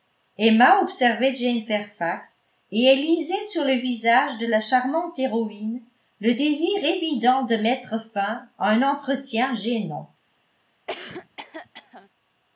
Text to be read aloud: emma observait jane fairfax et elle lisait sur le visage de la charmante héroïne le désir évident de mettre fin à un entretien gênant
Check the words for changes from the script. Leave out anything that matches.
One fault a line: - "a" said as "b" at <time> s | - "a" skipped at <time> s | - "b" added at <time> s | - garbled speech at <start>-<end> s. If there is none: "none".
none